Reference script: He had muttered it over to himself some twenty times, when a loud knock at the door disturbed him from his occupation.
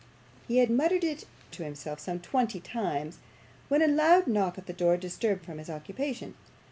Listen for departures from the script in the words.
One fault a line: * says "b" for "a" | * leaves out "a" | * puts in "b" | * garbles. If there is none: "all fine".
* leaves out "over"
* leaves out "him"